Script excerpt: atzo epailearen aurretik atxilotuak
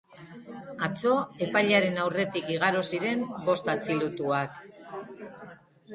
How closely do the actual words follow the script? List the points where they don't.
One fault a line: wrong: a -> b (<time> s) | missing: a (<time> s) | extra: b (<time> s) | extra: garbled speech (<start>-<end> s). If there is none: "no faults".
extra: igaro ziren bost (2.5 s)